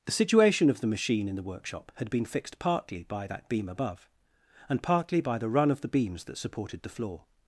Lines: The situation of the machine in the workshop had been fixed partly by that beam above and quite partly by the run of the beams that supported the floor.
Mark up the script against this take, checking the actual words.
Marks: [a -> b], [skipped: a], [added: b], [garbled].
The situation of the machine in the workshop had been fixed partly by that beam above and [skipped: quite] partly by the run of the beams that supported the floor.